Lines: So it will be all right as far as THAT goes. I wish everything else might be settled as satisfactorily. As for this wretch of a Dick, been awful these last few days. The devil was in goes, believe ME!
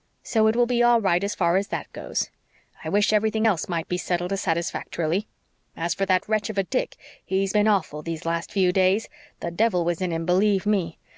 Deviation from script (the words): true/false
true